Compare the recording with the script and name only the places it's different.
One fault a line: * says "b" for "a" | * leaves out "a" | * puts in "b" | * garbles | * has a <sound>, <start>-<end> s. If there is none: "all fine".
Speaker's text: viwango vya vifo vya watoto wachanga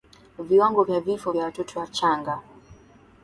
all fine